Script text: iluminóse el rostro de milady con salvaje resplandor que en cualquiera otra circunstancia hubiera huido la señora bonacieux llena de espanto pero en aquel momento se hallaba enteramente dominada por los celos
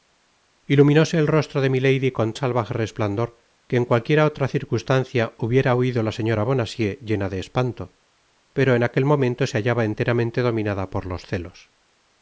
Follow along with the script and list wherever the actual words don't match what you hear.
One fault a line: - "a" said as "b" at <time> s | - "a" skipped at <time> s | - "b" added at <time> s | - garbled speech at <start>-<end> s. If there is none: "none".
none